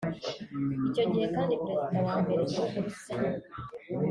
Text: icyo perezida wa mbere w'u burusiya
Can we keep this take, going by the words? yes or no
no